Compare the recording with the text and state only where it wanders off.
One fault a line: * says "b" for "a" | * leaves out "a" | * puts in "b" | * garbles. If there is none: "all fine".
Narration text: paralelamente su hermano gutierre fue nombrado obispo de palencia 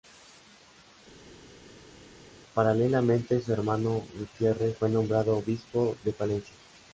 all fine